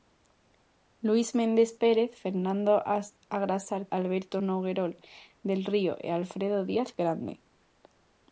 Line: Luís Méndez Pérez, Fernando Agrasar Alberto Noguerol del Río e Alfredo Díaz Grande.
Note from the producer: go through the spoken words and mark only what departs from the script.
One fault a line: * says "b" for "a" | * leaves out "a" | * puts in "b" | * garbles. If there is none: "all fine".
all fine